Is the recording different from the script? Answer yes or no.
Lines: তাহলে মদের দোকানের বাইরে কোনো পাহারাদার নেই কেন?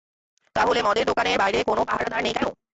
no